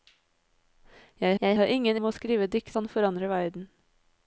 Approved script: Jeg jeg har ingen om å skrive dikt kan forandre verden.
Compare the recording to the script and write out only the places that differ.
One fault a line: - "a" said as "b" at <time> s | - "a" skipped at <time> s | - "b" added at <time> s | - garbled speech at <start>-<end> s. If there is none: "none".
none